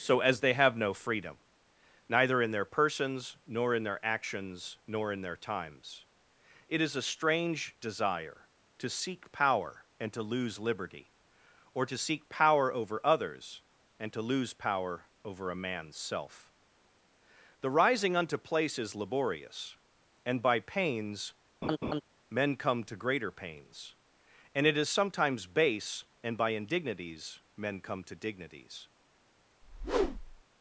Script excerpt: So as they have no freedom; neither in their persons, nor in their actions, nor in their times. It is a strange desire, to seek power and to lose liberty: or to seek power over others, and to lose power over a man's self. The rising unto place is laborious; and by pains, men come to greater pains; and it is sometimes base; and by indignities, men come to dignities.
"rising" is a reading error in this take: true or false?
false